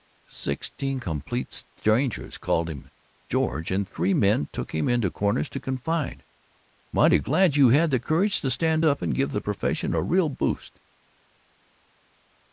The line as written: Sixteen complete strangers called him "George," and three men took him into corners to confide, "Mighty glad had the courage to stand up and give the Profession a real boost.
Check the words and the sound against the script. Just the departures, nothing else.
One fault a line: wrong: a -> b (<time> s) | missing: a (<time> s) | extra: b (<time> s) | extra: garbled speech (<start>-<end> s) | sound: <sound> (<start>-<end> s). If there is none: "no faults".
extra: you (7.5 s)